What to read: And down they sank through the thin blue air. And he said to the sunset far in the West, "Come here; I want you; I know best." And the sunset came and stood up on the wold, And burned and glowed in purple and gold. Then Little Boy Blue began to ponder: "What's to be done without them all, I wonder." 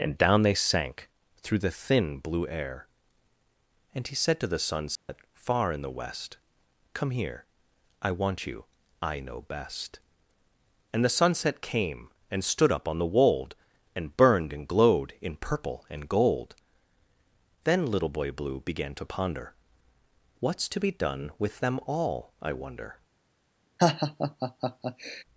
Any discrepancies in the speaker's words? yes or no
yes